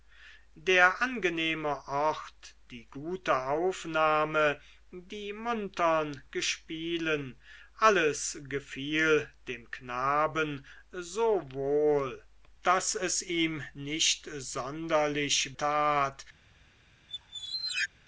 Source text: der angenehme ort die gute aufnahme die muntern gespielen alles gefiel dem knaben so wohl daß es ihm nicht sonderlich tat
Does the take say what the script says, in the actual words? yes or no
yes